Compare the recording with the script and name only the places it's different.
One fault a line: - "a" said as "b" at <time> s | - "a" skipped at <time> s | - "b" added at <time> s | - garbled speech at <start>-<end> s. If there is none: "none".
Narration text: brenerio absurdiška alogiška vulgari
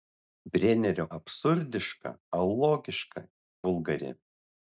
none